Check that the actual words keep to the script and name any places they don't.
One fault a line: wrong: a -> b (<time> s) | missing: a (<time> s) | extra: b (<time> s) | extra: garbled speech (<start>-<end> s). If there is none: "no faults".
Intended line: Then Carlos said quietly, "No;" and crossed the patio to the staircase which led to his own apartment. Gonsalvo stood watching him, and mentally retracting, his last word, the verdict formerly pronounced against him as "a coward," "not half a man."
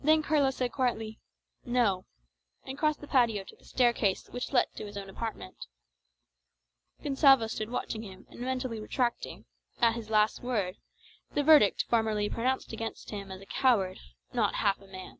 extra: at (9.8 s)